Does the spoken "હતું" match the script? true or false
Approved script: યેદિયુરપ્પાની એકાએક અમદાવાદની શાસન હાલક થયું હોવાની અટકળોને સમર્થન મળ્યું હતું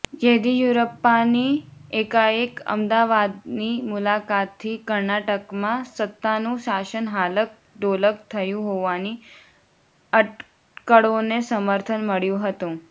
true